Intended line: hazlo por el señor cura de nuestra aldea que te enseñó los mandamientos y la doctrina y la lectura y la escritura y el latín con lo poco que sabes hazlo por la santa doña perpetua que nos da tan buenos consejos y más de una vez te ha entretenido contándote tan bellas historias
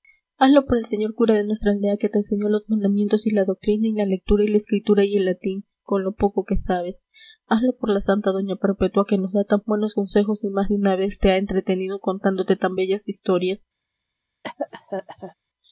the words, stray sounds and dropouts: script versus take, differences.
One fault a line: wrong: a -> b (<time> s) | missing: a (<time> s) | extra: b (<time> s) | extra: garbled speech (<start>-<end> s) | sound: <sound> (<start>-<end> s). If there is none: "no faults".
sound: cough (14.4-15.3 s)